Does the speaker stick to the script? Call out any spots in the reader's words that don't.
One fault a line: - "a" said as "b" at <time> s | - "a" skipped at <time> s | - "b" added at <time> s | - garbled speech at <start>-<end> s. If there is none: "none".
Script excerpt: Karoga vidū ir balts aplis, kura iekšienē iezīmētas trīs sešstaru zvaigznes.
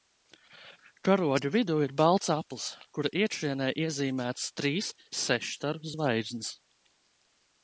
none